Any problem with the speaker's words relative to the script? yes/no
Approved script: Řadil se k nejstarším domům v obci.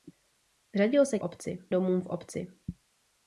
yes